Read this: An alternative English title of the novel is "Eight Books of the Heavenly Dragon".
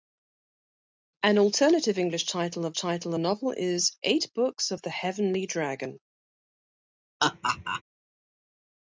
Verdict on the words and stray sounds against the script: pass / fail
fail